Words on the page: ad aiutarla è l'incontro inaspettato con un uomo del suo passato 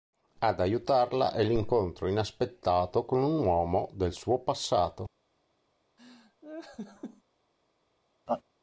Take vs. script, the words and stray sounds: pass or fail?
fail